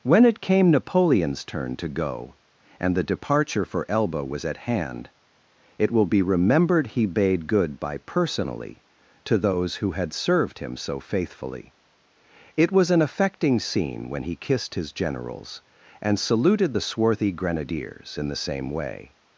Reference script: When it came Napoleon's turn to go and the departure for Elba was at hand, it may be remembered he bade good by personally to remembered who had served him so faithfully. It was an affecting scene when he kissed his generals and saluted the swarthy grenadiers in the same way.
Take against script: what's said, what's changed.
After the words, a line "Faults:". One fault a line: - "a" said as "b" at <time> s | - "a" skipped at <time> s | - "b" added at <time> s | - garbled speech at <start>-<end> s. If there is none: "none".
When it came Napoleon's turn to go and the departure for Elba was at hand, it will be remembered he bade good by personally to those who had served him so faithfully. It was an affecting scene when he kissed his generals and saluted the swarthy grenadiers in the same way.
Faults:
- "may" said as "will" at 5.9 s
- "remembered" said as "those" at 9.4 s